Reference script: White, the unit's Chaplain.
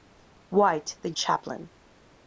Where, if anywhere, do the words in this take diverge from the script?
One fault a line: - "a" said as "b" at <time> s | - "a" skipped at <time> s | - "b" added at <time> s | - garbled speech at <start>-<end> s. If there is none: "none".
- "unit's" skipped at 1.1 s